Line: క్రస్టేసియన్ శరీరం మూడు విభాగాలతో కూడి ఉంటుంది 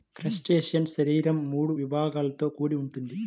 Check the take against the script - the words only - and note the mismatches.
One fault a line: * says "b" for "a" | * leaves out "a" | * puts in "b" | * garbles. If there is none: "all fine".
all fine